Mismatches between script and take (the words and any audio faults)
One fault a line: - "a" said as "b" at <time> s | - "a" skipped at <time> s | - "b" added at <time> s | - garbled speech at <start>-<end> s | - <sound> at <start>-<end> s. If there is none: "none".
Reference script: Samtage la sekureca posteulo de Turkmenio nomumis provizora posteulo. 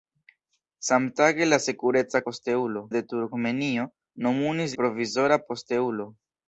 none